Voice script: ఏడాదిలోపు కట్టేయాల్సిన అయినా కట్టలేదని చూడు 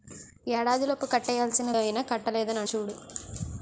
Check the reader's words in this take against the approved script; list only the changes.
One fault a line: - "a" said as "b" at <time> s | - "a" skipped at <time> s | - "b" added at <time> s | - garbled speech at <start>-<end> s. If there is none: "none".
none